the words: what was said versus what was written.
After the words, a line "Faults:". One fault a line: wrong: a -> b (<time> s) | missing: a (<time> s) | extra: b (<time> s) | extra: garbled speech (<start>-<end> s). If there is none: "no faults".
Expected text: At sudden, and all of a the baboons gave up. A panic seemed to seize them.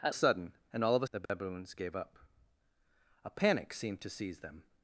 At sudden, and all of a the baboons gave up. A panic seemed to seize them.
Faults:
no faults